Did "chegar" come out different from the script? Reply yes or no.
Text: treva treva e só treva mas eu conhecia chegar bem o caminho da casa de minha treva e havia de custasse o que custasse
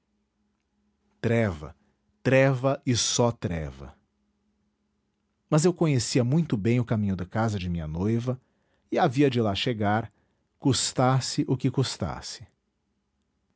yes